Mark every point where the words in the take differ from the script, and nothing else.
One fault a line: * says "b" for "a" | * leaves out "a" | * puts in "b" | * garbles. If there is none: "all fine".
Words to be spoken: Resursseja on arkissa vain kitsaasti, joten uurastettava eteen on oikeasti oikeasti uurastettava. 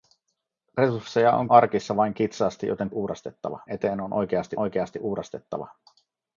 all fine